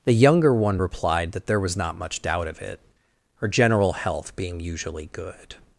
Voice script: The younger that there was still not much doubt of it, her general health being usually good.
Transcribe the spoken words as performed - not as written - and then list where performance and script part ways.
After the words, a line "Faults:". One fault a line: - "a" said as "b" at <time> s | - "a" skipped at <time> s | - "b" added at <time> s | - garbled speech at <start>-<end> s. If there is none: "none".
The younger one replied that there was not much doubt of it, her general health being usually good.
Faults:
- "one replied" added at 0.5 s
- "still" skipped at 1.8 s